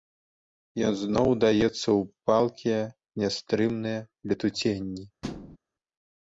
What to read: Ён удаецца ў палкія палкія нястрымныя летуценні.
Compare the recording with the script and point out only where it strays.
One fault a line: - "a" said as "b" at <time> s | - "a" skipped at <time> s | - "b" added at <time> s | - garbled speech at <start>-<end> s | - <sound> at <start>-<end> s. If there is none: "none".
- "зноў" added at 1.0 s
- "палкія" skipped at 2.8 s
- thud at 5.2-5.6 s